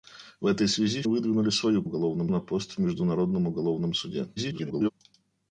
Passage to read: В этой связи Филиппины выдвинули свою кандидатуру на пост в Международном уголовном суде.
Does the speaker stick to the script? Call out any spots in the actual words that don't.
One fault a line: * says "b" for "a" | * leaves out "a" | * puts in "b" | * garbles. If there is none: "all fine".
* leaves out "Филиппины"
* says "уголовном" for "кандидатуру"
* garbles